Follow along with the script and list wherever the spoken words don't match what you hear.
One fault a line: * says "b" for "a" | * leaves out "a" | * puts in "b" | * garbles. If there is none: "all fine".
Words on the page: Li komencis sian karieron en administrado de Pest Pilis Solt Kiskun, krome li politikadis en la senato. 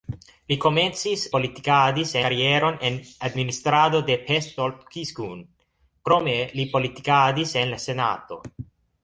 * says "politikadis" for "sian"
* leaves out "Pilis"